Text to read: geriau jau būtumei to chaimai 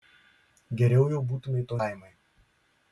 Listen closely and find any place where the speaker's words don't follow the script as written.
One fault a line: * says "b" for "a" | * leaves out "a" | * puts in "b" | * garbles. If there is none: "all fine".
all fine